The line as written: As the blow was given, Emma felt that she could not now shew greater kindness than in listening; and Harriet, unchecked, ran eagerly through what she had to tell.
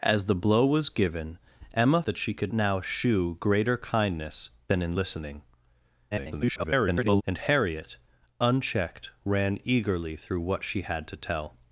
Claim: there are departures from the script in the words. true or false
true